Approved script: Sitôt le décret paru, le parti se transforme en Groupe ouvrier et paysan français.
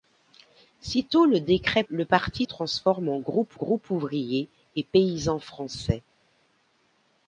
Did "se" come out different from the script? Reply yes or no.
yes